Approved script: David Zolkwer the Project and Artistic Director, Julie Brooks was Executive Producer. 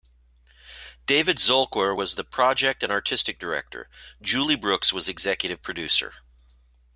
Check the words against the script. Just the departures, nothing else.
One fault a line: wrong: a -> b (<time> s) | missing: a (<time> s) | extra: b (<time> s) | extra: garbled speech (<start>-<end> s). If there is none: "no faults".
extra: was (1.9 s)